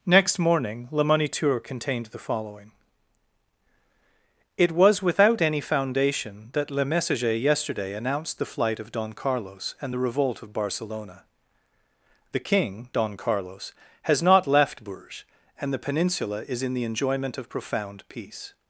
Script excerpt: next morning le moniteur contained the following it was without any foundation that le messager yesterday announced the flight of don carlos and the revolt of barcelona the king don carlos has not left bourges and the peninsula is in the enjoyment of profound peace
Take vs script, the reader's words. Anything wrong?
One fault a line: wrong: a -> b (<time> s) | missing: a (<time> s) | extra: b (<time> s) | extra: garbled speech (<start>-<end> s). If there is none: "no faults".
no faults